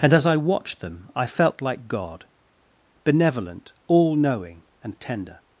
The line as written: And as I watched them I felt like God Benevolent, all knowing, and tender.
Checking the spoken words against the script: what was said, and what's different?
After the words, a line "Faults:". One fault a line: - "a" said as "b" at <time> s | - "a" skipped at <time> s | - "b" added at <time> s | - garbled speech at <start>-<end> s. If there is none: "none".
And as I watched them I felt like God Benevolent, all knowing, and tender.
Faults:
none